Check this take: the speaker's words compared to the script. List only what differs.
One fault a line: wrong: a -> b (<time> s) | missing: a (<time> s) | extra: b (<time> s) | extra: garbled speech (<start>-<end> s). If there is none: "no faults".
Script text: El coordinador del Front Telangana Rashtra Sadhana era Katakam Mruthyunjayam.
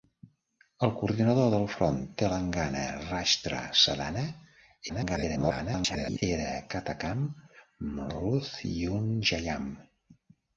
extra: garbled speech (4.9-6.2 s)